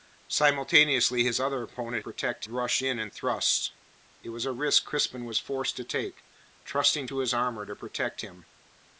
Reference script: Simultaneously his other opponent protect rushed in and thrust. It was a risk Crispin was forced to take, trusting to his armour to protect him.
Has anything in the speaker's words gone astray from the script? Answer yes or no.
no